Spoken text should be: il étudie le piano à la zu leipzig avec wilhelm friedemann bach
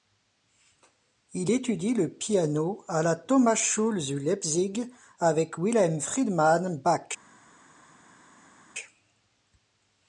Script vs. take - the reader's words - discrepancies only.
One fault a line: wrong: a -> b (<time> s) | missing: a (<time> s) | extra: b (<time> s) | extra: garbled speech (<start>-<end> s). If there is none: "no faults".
extra: thomasschule (3.2 s)